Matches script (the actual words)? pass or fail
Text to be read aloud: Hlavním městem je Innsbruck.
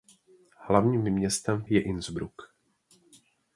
pass